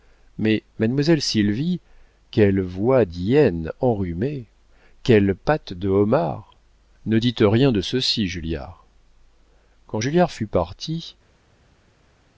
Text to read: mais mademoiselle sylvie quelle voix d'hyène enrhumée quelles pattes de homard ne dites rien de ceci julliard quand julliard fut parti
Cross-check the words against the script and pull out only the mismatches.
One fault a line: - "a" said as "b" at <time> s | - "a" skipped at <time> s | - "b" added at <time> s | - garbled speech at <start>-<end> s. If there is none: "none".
none